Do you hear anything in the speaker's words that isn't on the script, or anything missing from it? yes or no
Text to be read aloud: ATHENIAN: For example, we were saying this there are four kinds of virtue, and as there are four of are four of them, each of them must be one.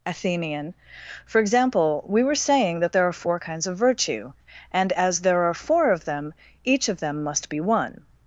yes